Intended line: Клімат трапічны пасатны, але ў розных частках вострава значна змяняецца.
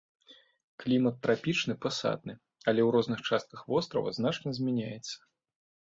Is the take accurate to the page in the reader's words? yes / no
yes